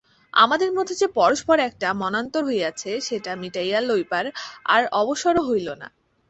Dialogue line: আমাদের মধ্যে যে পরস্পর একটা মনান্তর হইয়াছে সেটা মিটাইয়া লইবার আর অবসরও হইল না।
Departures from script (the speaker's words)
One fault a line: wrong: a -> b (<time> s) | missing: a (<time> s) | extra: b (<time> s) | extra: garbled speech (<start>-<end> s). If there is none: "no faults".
no faults